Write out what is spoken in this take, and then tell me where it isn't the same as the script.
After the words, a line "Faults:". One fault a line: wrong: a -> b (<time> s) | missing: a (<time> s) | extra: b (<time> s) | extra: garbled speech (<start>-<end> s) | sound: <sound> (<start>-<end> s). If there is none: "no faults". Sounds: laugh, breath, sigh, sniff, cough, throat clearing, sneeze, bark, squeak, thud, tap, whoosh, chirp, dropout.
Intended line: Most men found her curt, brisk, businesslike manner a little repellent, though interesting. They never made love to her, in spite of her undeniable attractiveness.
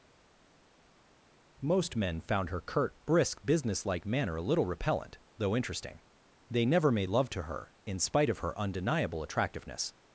Most men found her curt, brisk, businesslike manner a little repellent, though interesting. They never made love to her, in spite of her undeniable attractiveness.
Faults:
no faults